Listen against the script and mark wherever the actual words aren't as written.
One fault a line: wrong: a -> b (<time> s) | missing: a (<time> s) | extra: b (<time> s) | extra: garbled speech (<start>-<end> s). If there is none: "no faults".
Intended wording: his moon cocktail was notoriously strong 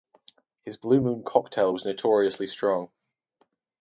extra: blue (0.8 s)